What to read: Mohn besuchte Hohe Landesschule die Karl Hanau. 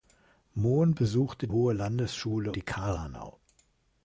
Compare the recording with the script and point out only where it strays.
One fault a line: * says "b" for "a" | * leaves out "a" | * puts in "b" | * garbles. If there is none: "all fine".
all fine